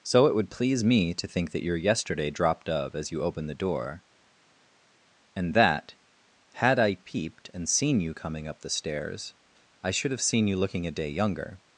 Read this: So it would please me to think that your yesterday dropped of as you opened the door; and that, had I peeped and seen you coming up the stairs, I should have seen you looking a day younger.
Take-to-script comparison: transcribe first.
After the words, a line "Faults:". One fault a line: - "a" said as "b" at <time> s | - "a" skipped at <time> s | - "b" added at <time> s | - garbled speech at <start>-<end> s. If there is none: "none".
So it would please me to think that your yesterday dropped of as you opened the door; and that, had I peeped and seen you coming up the stairs, I should have seen you looking a day younger.
Faults:
none